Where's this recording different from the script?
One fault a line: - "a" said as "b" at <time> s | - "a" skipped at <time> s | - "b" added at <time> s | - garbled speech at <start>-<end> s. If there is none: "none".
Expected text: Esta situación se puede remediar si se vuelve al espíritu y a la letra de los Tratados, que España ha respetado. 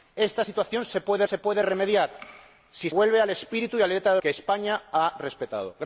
- "se puede" added at 1.2 s
- "se" skipped at 2.9 s
- "los Tratados" skipped at 4.2 s